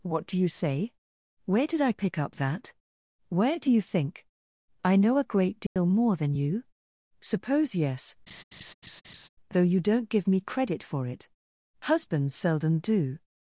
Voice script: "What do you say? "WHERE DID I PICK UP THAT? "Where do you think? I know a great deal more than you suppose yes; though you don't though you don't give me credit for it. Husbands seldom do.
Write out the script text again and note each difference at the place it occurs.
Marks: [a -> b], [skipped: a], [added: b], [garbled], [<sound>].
"What do you say? "WHERE DID I PICK UP THAT? "Where do you think? I know a great deal [dropout] more than you suppose yes; [laugh] though you don't [skipped: though you don't] give me credit for it. Husbands seldom do.